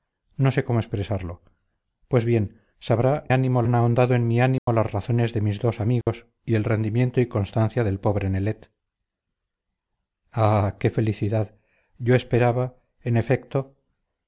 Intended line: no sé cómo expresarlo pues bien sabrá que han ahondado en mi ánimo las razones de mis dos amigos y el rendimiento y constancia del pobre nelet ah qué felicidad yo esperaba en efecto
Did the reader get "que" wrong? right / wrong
wrong